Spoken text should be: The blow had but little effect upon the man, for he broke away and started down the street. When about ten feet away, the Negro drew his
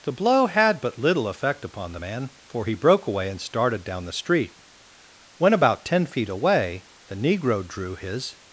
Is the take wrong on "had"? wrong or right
right